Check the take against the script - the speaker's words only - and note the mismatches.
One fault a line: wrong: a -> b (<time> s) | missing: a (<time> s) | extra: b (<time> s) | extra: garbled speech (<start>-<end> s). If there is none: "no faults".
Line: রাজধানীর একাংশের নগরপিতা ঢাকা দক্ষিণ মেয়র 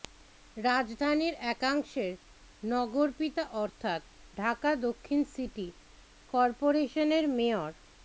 extra: অর্থাৎ (3.6 s)
extra: সিটি করপোরেশনের (5.3 s)